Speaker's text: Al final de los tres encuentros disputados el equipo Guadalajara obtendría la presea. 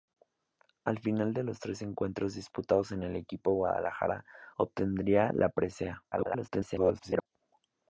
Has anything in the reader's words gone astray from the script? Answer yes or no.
yes